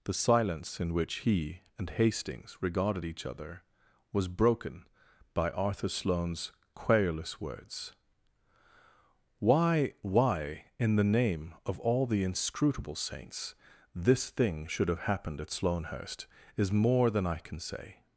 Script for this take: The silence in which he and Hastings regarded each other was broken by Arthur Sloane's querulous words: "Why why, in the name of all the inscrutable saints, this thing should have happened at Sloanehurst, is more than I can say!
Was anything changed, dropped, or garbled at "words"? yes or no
no